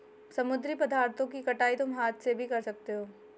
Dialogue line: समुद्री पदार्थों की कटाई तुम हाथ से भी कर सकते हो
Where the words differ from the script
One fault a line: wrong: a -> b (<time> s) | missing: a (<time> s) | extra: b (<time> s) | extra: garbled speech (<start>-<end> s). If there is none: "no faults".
no faults